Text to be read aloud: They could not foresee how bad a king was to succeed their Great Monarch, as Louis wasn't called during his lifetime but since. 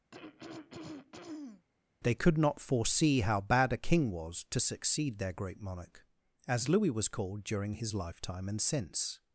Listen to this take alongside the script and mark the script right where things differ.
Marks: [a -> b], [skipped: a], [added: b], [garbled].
They could not foresee how bad a king was to succeed their Great Monarch, as Louis [wasn't -> was] called during his lifetime [but -> and] since.